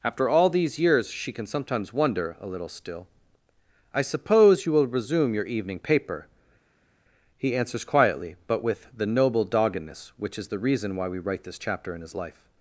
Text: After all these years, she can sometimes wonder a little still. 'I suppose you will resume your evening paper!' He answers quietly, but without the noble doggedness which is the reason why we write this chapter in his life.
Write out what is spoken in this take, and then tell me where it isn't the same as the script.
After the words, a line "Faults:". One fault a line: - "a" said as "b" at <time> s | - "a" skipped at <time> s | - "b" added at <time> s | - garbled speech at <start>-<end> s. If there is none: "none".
After all these years, she can sometimes wonder a little still. 'I suppose you will resume your evening paper!' He answers quietly, but with the noble doggedness which is the reason why we write this chapter in his life.
Faults:
- "without" said as "with" at 8.6 s